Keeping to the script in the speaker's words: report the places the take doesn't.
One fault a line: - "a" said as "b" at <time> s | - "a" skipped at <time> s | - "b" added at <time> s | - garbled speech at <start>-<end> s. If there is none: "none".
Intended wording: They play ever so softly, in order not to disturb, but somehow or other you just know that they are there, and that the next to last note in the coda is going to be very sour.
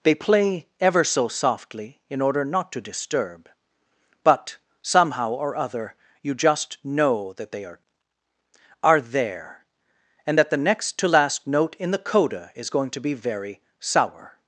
- "are" added at 8.8 s